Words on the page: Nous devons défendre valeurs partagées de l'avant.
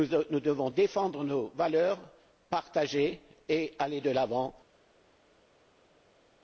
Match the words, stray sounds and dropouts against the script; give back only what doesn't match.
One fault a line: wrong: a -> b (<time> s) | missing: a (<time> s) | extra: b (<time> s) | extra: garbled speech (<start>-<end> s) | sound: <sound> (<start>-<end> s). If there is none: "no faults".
extra: nos (1.2 s)
extra: et aller (3.5 s)